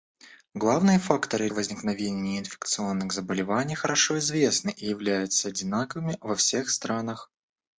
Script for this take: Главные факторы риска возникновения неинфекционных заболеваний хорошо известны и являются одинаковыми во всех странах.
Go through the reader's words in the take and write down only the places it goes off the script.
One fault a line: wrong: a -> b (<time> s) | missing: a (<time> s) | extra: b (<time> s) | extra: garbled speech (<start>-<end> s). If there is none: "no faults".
missing: риска (1.5 s)